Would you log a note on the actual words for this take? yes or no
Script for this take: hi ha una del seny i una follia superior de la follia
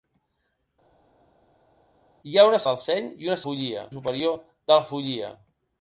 no